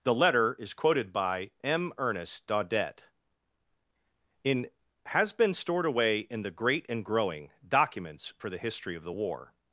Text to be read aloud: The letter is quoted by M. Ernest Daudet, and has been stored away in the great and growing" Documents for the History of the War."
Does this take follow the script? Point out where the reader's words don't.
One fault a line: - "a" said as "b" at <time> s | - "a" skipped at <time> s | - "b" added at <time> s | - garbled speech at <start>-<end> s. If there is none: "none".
- "and" said as "in" at 4.4 s